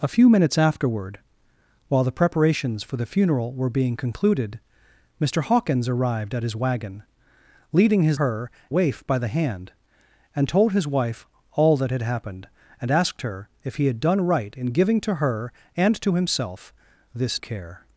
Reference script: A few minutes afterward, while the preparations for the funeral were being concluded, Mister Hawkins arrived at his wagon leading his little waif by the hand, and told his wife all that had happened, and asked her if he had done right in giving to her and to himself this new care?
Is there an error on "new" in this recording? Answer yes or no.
yes